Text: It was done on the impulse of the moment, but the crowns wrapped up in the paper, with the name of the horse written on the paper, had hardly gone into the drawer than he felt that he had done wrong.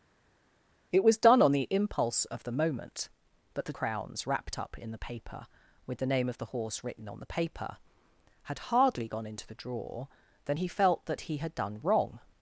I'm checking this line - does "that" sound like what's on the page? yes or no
yes